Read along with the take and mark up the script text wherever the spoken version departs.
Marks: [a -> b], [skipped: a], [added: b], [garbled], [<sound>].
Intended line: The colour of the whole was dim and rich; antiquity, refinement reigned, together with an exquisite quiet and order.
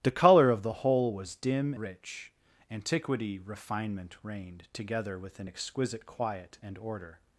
The colour of the whole was dim [skipped: and] rich; antiquity, refinement reigned, together with an exquisite quiet and order.